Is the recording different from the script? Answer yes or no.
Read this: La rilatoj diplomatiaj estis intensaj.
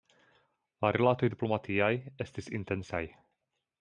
no